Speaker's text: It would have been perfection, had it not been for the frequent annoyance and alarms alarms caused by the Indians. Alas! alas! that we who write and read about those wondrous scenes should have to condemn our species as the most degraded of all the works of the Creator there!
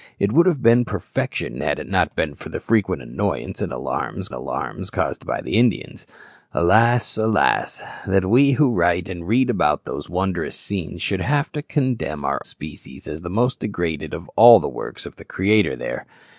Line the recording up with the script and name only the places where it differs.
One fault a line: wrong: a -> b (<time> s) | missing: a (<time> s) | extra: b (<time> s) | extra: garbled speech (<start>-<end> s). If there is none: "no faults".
no faults